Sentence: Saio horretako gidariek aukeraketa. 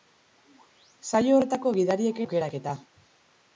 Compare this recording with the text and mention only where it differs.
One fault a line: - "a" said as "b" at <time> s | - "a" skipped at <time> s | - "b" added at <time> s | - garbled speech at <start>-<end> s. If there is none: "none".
none